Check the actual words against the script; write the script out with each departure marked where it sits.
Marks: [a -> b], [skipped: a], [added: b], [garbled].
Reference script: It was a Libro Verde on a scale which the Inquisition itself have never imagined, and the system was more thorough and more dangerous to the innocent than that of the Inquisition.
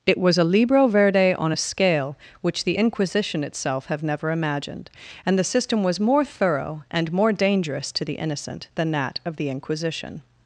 It was a Libro Verde on a scale which the Inquisition itself have never imagined, and the system was more thorough and more dangerous to the innocent than that of the Inquisition.